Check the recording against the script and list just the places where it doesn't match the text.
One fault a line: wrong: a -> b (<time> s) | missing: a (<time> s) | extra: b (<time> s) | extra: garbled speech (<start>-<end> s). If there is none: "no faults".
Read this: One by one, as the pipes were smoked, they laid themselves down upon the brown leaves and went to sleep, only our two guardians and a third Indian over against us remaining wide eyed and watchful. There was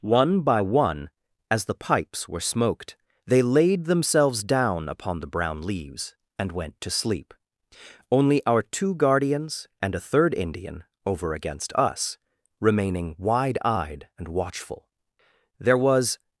no faults